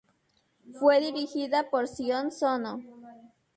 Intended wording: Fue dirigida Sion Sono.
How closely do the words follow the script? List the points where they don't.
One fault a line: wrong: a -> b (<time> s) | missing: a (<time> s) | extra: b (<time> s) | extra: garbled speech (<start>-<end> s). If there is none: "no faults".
extra: por (1.7 s)